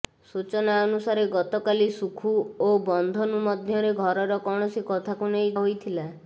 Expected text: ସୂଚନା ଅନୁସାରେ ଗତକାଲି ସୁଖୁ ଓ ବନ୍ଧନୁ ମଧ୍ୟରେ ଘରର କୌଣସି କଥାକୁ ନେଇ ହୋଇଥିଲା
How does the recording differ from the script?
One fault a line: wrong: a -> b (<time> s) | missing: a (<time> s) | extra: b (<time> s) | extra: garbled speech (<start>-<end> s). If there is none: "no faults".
no faults